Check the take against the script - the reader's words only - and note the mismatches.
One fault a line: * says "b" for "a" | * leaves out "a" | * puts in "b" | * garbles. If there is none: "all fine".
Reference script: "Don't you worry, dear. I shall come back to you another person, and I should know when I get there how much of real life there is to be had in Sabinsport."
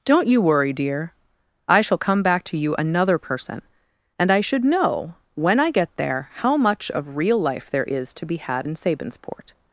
all fine